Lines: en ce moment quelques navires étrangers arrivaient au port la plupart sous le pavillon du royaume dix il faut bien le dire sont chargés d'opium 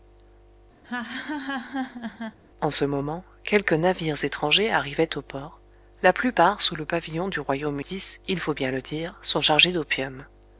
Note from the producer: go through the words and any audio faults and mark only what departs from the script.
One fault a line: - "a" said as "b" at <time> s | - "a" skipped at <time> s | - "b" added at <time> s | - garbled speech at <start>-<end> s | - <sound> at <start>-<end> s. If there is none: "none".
- laugh at 0.8-2.4 s